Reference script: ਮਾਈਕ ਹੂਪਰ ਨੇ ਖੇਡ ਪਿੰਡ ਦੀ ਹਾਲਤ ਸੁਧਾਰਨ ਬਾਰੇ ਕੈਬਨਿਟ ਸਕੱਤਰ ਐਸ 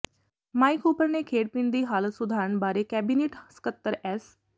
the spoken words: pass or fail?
pass